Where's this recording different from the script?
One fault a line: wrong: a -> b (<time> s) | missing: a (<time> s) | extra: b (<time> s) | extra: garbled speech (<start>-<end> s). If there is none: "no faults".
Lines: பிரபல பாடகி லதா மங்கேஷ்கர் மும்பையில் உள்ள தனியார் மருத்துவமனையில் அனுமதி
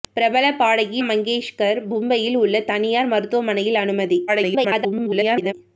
missing: லதா (1.0 s)
extra: garbled speech (4.3-5.5 s)